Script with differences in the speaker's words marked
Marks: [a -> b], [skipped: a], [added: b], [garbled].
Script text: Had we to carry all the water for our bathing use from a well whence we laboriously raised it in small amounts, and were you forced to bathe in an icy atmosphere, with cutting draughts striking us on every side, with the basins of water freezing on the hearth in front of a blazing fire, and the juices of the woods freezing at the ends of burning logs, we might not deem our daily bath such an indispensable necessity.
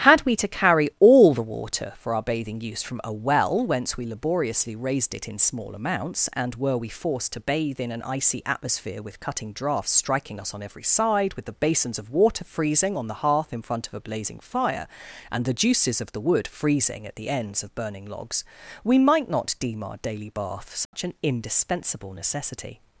Had we to carry all the water for our bathing use from a well whence we laboriously raised it in small amounts, and were [you -> we] forced to bathe in an icy atmosphere, with cutting draughts striking us on every side, with the basins of water freezing on the hearth in front of a blazing fire, and the juices of the [woods -> wood] freezing at the ends of burning logs, we might not deem our daily bath such an indispensable necessity.